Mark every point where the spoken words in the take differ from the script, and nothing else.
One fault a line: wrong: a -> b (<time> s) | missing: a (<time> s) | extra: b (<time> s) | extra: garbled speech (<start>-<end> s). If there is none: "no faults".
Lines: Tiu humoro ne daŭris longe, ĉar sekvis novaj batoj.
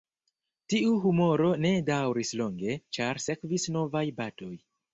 no faults